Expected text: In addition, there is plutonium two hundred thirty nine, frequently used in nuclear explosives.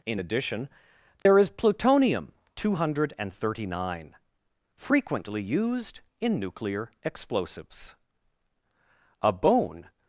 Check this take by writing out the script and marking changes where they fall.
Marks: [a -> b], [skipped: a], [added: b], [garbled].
In addition, there is plutonium two hundred thirty nine, frequently used in nuclear explosives. [added: A bone]